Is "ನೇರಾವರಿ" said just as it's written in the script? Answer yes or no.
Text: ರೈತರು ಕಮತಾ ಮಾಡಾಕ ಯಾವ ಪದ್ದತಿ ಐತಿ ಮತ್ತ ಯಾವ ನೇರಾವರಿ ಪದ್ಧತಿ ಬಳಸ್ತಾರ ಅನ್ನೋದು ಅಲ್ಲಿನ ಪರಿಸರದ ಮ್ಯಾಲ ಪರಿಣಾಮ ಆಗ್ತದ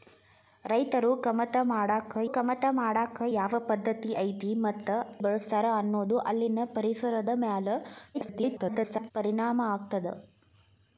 no